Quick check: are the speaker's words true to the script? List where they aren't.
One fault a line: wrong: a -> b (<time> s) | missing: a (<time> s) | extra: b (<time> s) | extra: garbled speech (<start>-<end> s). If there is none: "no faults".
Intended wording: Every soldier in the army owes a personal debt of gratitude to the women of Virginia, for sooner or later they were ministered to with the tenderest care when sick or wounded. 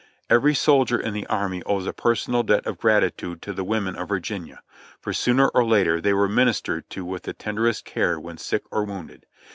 no faults